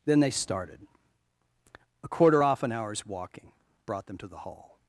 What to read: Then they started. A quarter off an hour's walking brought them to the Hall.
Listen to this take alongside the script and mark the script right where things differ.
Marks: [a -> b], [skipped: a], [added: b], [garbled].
Then they started. A quarter off an hour's walking brought them to the Hall.